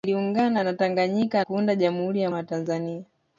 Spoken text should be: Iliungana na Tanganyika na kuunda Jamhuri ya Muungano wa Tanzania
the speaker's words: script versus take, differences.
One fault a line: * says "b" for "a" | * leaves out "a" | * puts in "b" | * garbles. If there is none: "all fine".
* leaves out "na"
* leaves out "Muungano"